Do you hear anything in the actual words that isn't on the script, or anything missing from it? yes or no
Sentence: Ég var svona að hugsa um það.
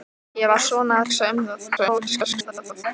yes